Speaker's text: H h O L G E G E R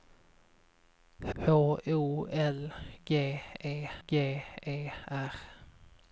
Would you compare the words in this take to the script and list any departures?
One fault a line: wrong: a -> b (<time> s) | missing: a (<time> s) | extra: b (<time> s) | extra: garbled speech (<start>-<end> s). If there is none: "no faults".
no faults